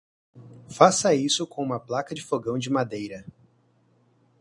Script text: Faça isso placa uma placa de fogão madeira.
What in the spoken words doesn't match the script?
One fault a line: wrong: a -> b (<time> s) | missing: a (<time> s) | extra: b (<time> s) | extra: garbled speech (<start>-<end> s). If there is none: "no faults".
wrong: placa -> com (1.4 s)
extra: de (2.6 s)